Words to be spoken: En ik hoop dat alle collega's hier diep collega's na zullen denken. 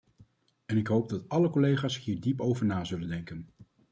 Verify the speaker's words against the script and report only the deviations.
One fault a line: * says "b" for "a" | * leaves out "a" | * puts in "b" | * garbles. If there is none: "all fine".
* says "over" for "collega's"